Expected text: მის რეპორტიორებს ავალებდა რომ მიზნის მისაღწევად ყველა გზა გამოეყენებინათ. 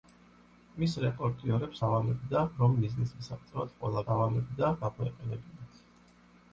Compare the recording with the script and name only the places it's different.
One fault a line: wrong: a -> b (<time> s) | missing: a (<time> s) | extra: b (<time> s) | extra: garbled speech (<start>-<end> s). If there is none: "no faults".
wrong: გზა -> ავალებდა (4.1 s)